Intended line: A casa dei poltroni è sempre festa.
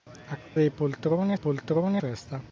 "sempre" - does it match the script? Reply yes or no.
no